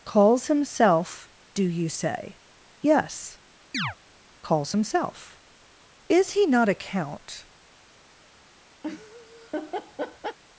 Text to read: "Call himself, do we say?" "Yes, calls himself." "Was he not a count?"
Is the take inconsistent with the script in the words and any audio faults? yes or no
yes